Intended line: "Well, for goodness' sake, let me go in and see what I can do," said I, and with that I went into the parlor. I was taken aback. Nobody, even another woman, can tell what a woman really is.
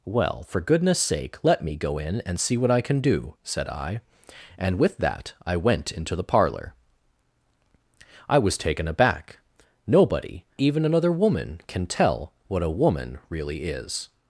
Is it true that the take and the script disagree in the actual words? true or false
false